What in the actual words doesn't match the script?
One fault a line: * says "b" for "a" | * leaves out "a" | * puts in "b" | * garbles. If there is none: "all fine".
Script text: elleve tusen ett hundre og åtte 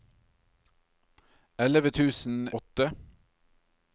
* leaves out "ett hundre og"